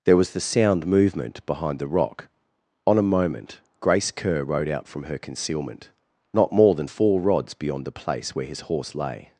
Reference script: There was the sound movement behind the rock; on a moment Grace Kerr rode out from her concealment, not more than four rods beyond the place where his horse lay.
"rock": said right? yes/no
yes